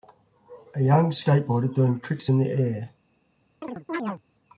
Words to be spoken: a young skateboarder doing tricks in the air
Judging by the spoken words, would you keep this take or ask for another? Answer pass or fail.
pass